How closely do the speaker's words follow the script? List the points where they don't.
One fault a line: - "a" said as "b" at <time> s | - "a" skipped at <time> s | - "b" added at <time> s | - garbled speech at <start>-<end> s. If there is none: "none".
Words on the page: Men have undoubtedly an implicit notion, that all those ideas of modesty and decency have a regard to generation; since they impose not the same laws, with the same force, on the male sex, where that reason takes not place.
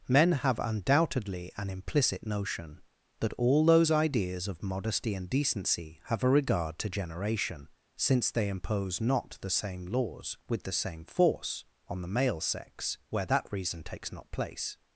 none